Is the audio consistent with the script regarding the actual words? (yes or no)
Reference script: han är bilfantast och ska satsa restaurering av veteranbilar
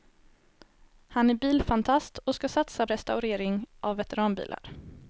yes